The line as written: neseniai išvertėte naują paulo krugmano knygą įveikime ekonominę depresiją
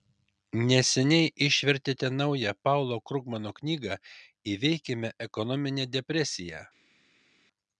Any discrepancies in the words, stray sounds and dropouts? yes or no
no